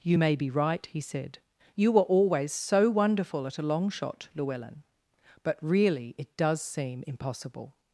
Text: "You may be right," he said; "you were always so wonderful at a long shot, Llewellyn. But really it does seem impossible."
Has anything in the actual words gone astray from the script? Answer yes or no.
no